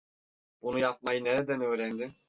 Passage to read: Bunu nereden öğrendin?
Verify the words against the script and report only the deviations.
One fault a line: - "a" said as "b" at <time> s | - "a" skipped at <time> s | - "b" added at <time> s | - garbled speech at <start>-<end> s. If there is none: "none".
- "yapmayı" added at 0.8 s